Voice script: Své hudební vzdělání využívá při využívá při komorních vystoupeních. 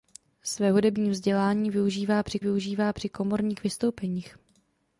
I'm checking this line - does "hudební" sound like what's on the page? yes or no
yes